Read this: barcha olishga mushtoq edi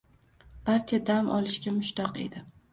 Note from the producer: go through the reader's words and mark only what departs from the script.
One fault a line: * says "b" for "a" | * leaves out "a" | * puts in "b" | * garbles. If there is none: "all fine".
* puts in "dam"